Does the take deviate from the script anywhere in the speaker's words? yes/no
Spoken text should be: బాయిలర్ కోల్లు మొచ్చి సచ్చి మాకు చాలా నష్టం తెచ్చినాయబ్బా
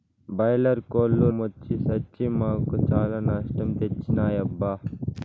no